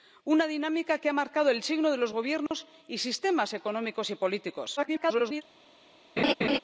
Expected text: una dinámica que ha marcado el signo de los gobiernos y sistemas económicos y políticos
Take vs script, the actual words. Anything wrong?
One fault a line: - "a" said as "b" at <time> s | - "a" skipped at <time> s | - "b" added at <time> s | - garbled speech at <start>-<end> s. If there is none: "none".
- garbled speech at 4.8-5.4 s